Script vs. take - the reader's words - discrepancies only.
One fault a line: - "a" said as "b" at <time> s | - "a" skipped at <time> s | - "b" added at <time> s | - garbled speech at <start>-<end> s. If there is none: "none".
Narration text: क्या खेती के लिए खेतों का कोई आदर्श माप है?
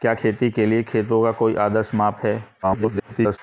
- garbled speech at 2.6-3.4 s